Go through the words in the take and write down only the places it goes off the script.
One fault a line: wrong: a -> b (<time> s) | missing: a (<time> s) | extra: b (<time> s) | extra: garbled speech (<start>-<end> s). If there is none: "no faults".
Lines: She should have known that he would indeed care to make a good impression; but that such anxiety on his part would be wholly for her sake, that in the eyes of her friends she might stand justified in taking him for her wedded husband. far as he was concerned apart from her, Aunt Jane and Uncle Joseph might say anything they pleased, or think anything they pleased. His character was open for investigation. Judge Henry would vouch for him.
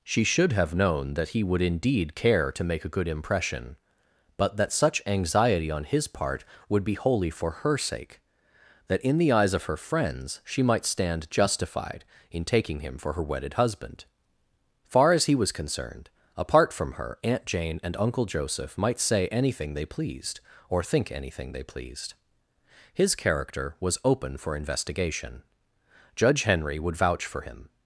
no faults